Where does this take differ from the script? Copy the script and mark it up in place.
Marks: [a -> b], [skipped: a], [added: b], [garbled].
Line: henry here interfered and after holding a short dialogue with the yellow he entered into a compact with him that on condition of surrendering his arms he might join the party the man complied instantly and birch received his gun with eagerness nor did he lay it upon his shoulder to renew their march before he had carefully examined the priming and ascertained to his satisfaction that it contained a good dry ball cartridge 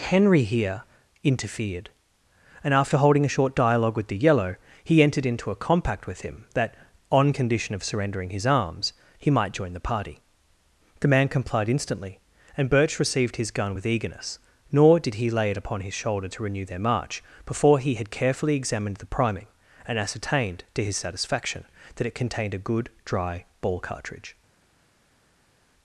henry here interfered and after holding a short dialogue with the yellow he entered into a compact with him that on condition of surrendering his arms he might join the party the man complied instantly and birch received his gun with eagerness nor did he lay it upon his shoulder to renew their march before he had carefully examined the priming and ascertained to his satisfaction that it contained a good dry ball cartridge